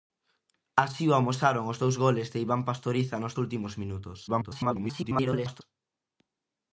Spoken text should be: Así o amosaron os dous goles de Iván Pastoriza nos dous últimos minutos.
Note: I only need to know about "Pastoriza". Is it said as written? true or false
true